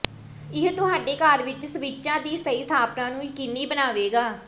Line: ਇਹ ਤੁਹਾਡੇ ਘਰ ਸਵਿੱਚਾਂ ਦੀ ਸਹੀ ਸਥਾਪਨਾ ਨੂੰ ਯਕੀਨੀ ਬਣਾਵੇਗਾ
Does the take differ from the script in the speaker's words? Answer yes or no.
yes